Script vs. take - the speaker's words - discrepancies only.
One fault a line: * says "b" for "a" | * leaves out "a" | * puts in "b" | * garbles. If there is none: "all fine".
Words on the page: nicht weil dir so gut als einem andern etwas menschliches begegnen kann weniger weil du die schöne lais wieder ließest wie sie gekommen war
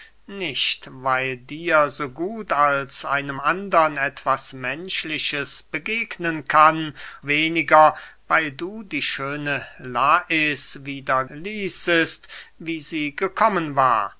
all fine